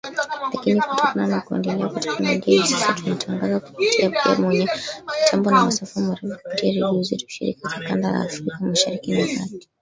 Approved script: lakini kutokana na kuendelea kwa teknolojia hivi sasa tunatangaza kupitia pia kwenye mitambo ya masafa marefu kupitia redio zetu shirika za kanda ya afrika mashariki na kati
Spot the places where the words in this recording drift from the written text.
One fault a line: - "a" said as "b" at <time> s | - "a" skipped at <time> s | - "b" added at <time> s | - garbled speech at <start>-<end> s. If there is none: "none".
none